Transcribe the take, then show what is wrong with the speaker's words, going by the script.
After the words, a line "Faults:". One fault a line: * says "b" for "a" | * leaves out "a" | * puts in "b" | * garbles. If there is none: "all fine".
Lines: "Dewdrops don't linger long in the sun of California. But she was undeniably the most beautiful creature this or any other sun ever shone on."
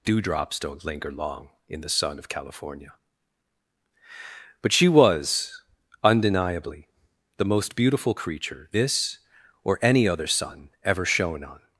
"Dewdrops don't linger long in the sun of California. But she was undeniably the most beautiful creature this or any other sun ever shone on."
Faults:
all fine